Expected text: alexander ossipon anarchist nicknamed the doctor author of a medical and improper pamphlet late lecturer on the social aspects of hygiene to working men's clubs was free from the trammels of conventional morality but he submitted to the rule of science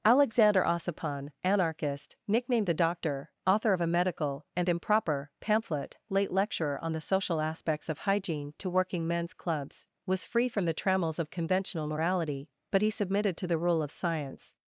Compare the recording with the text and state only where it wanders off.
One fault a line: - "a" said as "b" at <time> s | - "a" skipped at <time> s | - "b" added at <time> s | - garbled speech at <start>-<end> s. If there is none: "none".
none